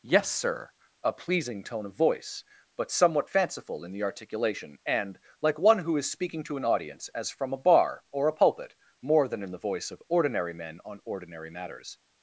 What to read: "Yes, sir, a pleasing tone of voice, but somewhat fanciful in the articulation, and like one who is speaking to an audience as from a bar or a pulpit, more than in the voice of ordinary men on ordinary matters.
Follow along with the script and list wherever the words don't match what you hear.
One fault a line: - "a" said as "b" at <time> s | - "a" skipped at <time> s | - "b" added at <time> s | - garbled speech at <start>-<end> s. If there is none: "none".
none